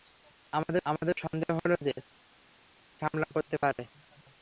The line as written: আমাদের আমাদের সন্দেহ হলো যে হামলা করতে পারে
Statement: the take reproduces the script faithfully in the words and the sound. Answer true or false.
true